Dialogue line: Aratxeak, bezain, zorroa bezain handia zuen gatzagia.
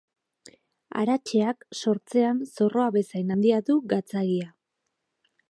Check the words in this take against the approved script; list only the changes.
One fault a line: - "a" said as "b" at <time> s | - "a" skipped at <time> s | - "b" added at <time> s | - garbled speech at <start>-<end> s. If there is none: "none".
- "bezain" said as "sortzean" at 1.8 s
- "zuen" said as "du" at 3.7 s